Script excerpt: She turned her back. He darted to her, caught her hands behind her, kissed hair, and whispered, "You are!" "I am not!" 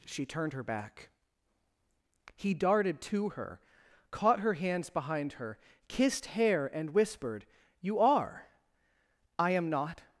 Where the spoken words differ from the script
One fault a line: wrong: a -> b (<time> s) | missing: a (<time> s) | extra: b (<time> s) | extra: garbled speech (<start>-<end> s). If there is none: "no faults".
no faults